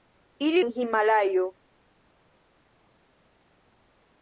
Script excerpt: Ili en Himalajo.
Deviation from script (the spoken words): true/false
false